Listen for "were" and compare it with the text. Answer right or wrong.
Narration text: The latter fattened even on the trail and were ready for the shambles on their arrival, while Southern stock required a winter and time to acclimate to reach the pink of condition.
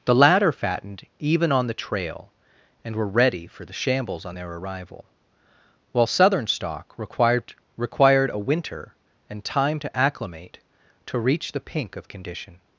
right